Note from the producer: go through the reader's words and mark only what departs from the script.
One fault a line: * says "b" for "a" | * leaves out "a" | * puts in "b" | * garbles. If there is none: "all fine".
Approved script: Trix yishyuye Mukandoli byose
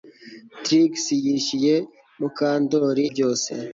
all fine